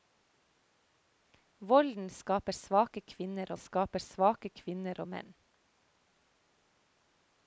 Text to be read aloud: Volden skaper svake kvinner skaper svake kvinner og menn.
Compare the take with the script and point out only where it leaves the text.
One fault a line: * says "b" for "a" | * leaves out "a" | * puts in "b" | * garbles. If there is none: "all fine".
all fine